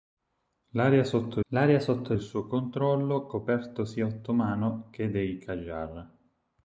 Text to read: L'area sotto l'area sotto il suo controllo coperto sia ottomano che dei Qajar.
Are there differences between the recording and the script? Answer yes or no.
no